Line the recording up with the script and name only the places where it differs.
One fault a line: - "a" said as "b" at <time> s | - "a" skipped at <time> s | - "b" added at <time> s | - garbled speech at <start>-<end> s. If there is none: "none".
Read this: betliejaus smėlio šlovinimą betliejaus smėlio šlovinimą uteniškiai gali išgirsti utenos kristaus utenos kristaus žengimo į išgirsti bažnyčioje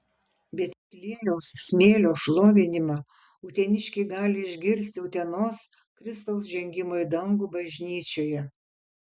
- "betliejaus smėlio šlovinimą" skipped at 3.0 s
- "utenos kristaus" skipped at 6.5 s
- "išgirsti" said as "dangų" at 7.2 s